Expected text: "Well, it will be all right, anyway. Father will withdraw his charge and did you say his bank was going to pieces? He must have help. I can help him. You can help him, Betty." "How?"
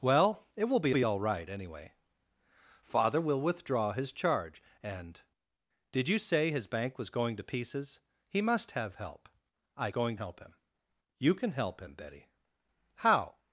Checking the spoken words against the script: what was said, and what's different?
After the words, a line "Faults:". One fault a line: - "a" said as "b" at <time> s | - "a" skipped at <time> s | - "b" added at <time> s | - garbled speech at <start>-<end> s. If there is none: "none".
"Well, it will be be all right, anyway. Father will withdraw his charge and did you say his bank was going to pieces? He must have help. I going help him. You can help him, Betty." "How?"
Faults:
- "be" added at 0.9 s
- "can" said as "going" at 9.9 s